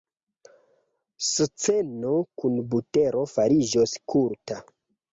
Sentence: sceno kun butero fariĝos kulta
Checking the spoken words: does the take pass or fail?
pass